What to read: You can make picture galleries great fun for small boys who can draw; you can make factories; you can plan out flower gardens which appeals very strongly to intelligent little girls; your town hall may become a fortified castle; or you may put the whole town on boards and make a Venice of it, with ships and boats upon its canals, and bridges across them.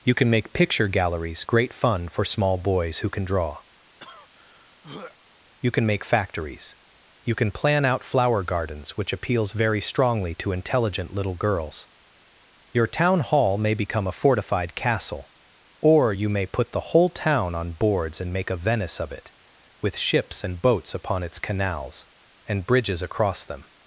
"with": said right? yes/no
yes